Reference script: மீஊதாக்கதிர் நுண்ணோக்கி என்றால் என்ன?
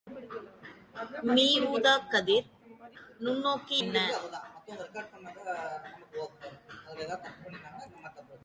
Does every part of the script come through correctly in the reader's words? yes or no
no